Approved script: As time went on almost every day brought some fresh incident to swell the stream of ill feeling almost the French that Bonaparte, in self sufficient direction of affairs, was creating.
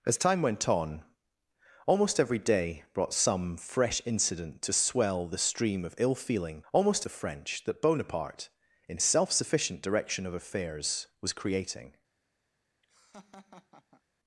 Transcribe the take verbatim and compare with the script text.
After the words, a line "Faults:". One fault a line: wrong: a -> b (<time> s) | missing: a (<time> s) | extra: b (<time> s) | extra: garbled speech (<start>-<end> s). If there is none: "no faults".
As time went on almost every day brought some fresh incident to swell the stream of ill feeling almost the French that Bonaparte, in self sufficient direction of affairs, was creating.
Faults:
no faults